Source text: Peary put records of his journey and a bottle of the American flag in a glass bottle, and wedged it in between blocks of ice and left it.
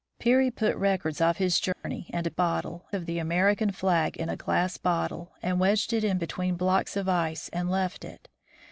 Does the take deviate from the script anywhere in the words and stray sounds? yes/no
yes